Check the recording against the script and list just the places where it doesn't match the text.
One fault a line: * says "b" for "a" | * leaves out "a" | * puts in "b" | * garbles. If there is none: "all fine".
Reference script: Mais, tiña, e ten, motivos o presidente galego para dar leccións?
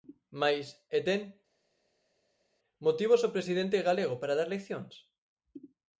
* leaves out "tiña"